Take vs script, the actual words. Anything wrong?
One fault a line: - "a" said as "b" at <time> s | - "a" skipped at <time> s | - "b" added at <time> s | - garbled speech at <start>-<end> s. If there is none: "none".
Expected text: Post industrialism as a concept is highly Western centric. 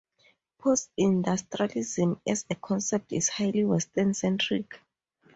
none